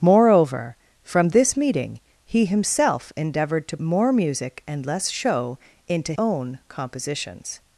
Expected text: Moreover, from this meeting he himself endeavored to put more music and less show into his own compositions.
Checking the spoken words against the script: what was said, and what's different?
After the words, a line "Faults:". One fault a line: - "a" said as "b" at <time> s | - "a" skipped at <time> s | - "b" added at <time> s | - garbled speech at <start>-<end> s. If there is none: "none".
Moreover, from this meeting he himself endeavored to more music and less show into own compositions.
Faults:
- "put" skipped at 3.8 s
- "his" skipped at 6.1 s